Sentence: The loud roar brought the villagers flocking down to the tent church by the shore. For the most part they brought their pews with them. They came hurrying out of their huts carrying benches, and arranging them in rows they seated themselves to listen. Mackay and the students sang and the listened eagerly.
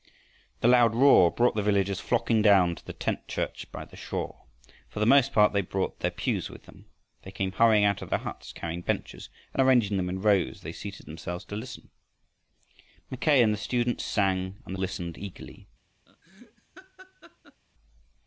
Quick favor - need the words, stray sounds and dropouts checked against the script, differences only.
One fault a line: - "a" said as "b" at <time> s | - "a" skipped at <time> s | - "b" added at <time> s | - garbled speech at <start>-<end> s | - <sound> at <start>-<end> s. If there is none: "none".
- laugh at 16.1-17.6 s